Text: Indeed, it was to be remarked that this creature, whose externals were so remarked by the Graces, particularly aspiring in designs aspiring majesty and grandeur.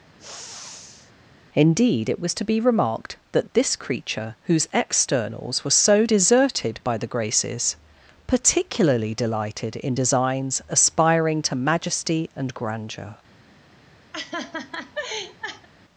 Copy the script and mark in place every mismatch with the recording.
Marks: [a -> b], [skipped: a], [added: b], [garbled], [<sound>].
[sniff] Indeed, it was to be remarked that this creature, whose externals were so [remarked -> deserted] by the Graces, particularly [aspiring -> delighted] in designs aspiring [added: to] majesty and grandeur. [laugh]